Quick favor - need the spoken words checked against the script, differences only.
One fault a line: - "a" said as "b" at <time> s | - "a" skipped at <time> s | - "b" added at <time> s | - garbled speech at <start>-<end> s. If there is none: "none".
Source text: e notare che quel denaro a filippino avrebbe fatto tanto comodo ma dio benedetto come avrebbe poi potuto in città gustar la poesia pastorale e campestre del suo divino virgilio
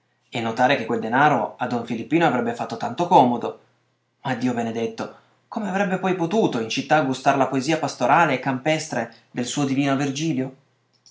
- "don" added at 1.7 s